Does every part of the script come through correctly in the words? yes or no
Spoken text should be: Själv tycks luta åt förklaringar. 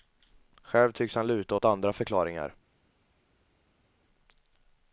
no